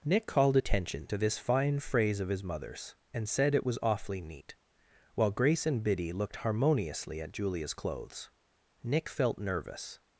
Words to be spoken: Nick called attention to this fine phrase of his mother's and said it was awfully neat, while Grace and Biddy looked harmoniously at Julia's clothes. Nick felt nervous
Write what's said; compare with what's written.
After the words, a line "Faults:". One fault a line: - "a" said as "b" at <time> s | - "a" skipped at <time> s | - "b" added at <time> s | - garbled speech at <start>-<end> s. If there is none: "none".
Nick called attention to this fine phrase of his mother's and said it was awfully neat, while Grace and Biddy looked harmoniously at Julia's clothes. Nick felt nervous
Faults:
none